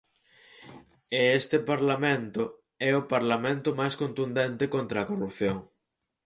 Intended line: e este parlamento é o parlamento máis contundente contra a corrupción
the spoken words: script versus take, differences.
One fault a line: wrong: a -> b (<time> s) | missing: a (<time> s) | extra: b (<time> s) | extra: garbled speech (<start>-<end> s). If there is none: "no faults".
no faults